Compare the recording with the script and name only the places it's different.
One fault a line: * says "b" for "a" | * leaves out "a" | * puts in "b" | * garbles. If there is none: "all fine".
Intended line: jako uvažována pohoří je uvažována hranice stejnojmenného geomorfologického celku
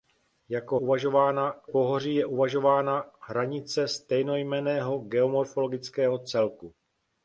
all fine